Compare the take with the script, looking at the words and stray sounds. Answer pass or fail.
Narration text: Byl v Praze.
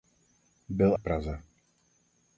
pass